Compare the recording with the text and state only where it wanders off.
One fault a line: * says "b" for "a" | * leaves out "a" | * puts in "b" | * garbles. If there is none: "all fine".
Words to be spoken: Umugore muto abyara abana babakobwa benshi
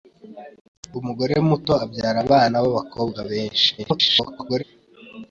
* garbles